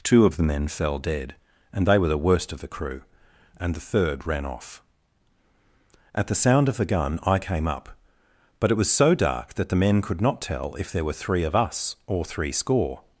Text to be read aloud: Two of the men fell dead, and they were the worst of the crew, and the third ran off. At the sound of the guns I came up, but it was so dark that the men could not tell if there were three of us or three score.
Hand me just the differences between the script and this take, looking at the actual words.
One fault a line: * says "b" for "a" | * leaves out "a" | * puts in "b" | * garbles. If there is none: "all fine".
* says "gun" for "guns"